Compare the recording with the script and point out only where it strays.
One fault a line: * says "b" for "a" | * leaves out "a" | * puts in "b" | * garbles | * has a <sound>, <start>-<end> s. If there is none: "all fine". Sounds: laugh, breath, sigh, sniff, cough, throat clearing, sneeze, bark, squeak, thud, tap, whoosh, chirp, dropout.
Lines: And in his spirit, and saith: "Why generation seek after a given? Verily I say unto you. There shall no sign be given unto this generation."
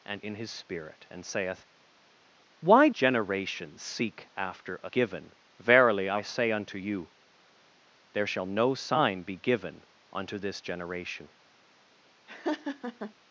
* has a laugh, 12.3-13.1 s